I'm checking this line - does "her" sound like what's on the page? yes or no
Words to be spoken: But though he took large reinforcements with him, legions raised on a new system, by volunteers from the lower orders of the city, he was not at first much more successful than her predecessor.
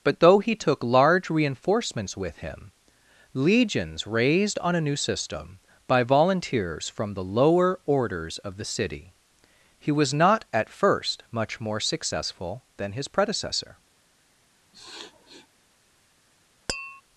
no